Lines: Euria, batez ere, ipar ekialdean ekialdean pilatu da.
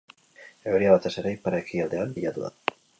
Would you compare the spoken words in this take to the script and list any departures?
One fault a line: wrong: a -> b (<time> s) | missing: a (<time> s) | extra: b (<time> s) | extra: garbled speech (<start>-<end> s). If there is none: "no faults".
missing: ekialdean (2.2 s)